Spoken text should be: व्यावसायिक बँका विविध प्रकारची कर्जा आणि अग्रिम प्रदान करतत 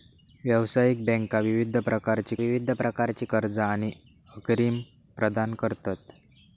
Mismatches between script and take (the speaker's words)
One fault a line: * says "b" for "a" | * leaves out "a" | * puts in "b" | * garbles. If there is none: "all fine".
* puts in "विविध प्रकारची"